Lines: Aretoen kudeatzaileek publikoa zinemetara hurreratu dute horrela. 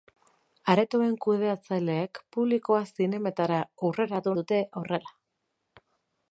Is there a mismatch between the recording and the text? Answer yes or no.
no